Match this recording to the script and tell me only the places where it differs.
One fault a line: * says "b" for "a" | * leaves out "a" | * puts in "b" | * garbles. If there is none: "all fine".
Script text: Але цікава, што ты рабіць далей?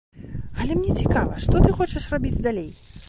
* puts in "мне"
* puts in "хочаш"